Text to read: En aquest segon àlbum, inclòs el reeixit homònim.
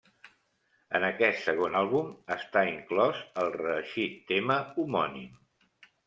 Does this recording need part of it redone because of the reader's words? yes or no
yes